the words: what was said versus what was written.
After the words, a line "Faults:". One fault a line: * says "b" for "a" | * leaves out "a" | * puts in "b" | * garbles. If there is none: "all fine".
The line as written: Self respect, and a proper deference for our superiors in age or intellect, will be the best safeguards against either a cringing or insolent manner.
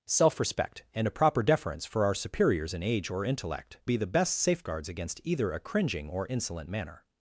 Self respect, and a proper deference for our superiors in age or intellect, be the best safeguards against either a cringing or insolent manner.
Faults:
* leaves out "will"